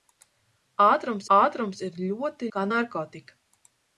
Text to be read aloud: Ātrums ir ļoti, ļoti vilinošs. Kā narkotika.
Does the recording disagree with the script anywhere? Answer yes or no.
yes